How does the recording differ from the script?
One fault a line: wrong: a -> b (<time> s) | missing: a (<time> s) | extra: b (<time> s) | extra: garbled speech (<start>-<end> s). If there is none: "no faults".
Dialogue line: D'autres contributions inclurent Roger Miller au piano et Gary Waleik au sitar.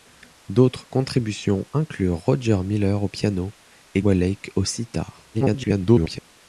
missing: Gary (4.0 s)
extra: garbled speech (5.3-6.2 s)